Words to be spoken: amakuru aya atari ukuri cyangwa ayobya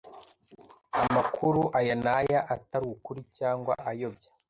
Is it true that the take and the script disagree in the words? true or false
true